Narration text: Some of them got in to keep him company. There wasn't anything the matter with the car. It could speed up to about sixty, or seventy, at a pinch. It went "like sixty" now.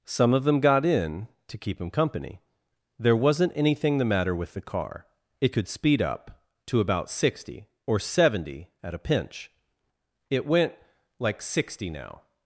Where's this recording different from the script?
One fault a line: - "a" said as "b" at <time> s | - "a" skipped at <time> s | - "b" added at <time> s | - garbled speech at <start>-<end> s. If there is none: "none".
none